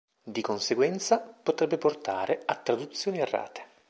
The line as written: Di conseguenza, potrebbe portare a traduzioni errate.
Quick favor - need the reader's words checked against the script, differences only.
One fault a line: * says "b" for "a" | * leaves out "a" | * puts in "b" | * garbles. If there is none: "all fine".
all fine